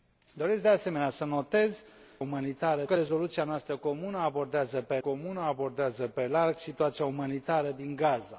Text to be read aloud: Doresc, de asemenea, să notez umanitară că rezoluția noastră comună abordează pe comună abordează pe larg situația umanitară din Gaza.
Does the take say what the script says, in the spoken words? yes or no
yes